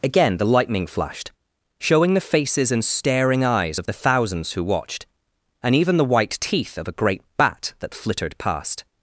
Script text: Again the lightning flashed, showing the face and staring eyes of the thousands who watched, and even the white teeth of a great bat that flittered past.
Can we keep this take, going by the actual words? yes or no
no